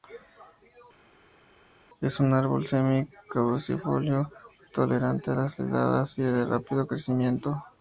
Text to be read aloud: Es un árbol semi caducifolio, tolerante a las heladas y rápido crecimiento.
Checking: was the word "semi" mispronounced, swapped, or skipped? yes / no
no